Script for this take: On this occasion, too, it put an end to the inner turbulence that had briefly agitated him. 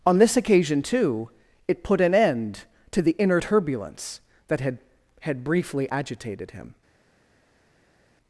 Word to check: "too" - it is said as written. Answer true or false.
true